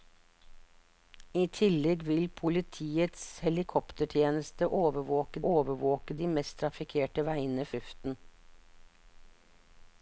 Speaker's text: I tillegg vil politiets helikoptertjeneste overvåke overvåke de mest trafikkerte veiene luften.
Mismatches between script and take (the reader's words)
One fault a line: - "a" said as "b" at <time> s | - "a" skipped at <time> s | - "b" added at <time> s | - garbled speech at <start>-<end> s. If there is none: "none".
none